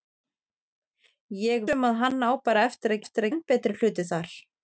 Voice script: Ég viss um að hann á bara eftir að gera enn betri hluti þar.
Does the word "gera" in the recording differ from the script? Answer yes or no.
yes